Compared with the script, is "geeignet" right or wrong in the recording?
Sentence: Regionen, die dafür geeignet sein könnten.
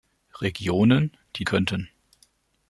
wrong